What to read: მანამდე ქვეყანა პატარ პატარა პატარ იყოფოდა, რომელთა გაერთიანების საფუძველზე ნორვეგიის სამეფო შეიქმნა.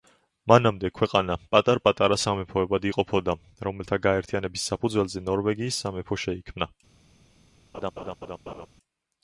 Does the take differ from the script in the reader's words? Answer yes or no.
yes